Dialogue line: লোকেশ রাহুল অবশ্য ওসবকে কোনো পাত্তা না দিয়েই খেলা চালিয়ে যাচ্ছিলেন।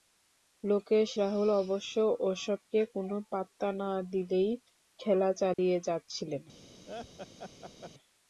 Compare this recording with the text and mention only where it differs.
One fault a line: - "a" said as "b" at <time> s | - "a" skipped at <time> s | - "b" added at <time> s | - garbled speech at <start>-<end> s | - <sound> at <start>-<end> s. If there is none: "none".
- dropout at 5.5-5.6 s
- laugh at 6.9-7.9 s